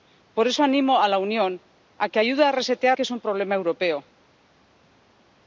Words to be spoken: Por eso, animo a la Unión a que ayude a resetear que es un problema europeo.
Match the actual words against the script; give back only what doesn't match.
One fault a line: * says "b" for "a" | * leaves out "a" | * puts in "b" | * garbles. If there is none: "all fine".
all fine